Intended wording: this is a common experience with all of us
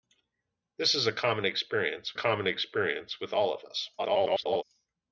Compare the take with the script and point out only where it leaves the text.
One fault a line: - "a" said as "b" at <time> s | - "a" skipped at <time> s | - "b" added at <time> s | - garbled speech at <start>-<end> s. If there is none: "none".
- "common experience" added at 2.1 s
- garbled speech at 4.0-4.6 s